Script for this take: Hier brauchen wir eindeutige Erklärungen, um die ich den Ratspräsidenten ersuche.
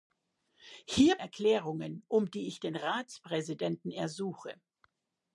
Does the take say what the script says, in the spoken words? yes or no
no